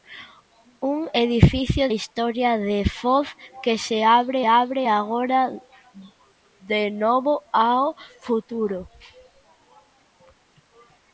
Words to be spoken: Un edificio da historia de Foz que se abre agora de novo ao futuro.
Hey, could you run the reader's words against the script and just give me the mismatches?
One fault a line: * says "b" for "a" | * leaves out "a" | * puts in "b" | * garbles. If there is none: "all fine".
* leaves out "da"
* puts in "abre"